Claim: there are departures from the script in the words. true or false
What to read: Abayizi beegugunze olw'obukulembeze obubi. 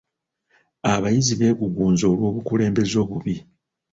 false